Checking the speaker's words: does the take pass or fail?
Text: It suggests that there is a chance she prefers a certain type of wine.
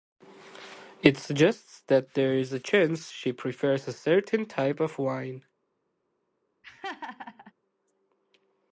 pass